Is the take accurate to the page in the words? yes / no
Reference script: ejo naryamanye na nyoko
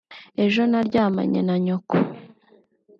yes